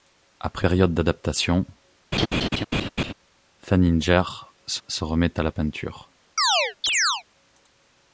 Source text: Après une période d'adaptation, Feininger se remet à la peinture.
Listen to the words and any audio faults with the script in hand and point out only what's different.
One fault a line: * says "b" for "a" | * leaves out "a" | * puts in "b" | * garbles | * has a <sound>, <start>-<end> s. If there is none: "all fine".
* leaves out "une"
* has a laugh, 2.1-3.1 s
* puts in "se"
* has a chirp, 6.4-7.2 s